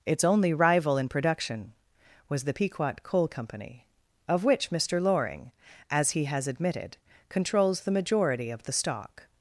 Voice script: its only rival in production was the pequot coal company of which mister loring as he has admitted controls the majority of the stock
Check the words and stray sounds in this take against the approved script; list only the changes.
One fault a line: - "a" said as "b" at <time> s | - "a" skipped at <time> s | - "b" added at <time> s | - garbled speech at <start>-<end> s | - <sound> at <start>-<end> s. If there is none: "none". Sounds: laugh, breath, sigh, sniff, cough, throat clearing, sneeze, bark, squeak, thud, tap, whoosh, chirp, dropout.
none